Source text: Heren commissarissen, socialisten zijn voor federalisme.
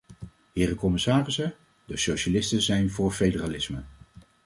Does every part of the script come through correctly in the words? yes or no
no